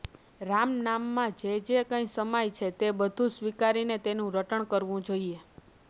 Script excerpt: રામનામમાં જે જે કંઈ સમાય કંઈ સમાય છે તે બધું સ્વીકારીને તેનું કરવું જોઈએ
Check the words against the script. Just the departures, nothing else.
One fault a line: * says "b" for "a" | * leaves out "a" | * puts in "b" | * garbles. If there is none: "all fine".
* leaves out "કંઈ સમાય"
* puts in "રટણ"